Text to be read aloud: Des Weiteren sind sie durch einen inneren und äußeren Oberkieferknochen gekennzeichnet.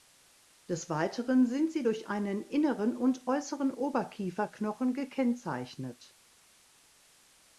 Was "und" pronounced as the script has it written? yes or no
yes